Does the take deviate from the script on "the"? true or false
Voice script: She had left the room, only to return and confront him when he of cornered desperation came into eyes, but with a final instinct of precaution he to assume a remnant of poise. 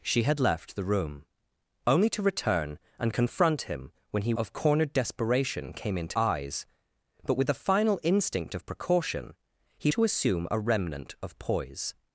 false